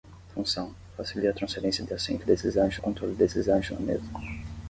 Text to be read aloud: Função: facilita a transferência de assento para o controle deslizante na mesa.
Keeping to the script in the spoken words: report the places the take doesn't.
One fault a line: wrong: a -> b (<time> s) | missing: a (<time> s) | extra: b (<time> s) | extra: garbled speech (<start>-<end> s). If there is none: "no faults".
wrong: para -> deslizante (2.2 s)